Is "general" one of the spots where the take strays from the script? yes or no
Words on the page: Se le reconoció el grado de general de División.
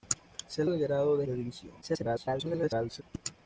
yes